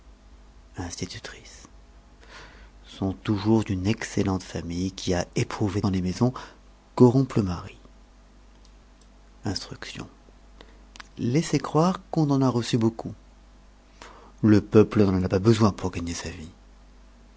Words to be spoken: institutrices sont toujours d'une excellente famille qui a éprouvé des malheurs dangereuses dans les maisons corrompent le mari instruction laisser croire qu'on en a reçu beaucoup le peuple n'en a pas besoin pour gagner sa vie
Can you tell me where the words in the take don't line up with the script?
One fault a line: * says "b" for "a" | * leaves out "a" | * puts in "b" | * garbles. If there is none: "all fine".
* leaves out "des malheurs dangereuses"